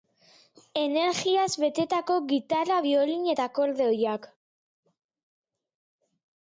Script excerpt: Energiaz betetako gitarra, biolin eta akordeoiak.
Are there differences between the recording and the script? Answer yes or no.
no